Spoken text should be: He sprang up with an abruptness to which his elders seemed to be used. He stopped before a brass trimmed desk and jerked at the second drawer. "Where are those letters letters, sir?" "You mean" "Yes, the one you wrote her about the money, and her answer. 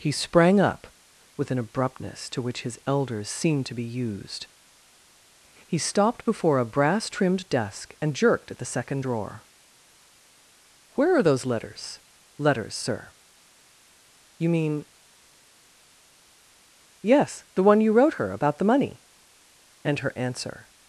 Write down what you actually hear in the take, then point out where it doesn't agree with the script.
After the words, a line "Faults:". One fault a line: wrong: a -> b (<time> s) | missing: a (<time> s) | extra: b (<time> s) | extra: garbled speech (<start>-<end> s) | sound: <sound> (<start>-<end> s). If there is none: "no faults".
He sprang up with an abruptness to which his elders seemed to be used. He stopped before a brass trimmed desk and jerked at the second drawer. "Where are those letters letters, sir?" "You mean" "Yes, the one you wrote her about the money, and her answer.
Faults:
no faults